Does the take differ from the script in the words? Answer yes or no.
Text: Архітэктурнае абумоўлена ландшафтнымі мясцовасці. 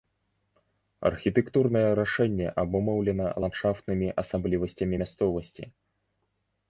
yes